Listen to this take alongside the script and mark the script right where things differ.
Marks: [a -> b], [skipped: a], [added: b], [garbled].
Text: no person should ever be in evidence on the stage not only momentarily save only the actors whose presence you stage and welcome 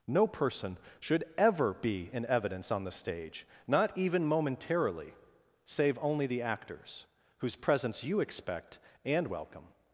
no person should ever be in evidence on the stage not [only -> even] momentarily save only the actors whose presence you [stage -> expect] and welcome